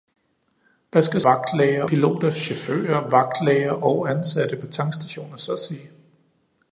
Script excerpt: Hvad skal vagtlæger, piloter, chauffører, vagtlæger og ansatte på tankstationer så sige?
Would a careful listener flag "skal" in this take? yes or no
no